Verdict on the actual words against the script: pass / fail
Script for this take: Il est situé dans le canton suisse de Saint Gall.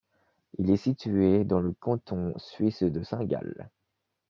pass